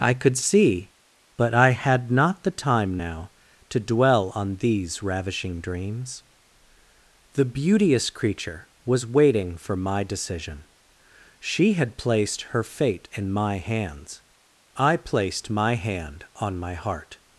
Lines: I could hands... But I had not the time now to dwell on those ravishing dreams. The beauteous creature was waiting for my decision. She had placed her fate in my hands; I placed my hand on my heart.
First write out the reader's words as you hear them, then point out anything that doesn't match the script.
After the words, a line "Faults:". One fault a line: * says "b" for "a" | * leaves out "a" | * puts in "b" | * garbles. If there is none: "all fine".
I could see... But I had not the time now to dwell on these ravishing dreams. The beauteous creature was waiting for my decision. She had placed her fate in my hands; I placed my hand on my heart.
Faults:
* says "see" for "hands"
* says "these" for "those"